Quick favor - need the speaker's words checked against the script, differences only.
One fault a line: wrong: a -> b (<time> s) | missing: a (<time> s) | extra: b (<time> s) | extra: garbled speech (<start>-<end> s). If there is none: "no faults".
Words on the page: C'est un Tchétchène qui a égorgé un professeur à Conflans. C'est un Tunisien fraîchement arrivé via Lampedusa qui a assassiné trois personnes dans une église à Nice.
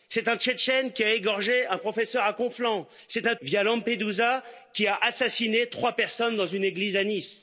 missing: Tunisien fraîchement arrivé (3.4 s)